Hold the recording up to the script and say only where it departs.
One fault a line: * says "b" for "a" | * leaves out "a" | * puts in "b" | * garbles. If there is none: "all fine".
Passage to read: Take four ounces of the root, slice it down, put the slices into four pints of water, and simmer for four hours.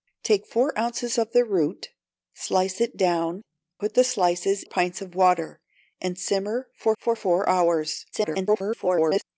* leaves out "into four"
* puts in "for"
* garbles